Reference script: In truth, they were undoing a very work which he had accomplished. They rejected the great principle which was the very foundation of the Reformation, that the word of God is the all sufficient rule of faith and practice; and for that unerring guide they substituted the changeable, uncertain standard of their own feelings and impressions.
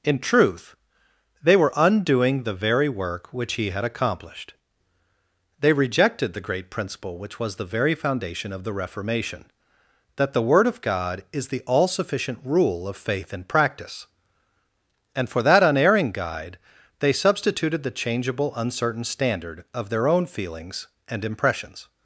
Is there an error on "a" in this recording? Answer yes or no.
yes